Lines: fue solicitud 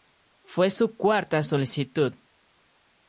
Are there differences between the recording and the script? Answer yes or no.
yes